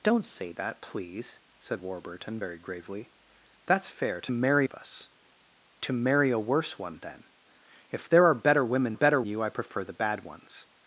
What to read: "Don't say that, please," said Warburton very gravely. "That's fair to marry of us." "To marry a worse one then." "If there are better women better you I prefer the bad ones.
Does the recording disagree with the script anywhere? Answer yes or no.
no